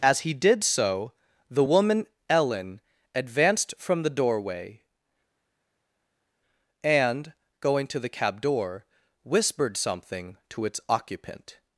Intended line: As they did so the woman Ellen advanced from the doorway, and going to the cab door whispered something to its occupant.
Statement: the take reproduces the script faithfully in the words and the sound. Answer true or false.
false